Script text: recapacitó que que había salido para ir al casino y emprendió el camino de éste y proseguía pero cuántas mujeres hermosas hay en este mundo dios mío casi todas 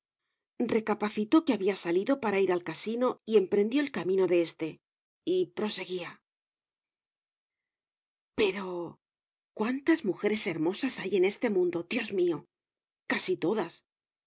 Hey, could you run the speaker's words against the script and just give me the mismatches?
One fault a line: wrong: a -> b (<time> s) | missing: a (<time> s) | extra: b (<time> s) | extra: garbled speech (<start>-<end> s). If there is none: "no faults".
missing: que (1.5 s)